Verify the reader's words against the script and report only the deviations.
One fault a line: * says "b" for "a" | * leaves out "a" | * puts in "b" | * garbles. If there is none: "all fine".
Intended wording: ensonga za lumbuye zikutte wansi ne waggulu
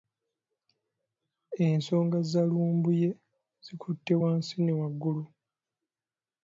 all fine